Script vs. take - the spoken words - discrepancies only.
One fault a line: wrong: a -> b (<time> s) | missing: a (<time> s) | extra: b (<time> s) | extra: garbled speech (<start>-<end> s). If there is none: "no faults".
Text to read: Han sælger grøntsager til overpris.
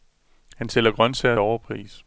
missing: til (1.4 s)